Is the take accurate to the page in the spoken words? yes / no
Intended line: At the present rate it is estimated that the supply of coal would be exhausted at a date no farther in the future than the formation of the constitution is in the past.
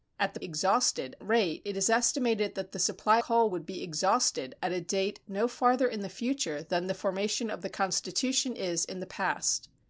no